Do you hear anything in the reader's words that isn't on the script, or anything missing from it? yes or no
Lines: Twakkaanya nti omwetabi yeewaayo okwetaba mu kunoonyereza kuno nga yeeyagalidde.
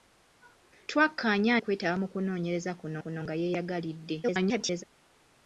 yes